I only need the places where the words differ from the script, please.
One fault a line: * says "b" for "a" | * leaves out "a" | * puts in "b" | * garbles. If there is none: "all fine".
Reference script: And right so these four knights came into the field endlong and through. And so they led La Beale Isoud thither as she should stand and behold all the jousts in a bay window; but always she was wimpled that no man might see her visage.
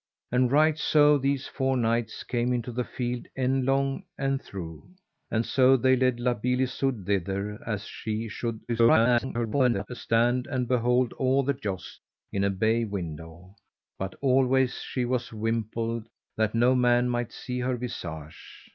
* garbles